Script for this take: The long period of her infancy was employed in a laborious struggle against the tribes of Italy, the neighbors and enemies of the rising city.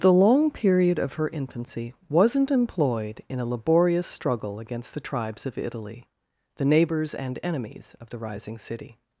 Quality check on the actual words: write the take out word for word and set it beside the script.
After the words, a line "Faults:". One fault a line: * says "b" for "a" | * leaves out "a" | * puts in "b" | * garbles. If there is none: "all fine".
The long period of her infancy wasn't employed in a laborious struggle against the tribes of Italy, the neighbors and enemies of the rising city.
Faults:
* says "wasn't" for "was"